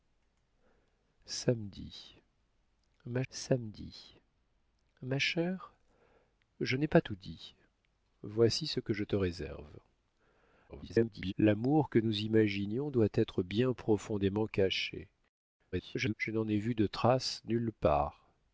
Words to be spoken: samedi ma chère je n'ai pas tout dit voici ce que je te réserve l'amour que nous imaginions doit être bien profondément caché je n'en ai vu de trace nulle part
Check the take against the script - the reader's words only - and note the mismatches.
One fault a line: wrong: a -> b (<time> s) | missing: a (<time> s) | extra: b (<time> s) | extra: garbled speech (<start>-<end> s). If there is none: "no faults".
extra: samedi ma (3.3 s)
extra: garbled speech (10.7-11.3 s)
extra: garbled speech (15.7-16.1 s)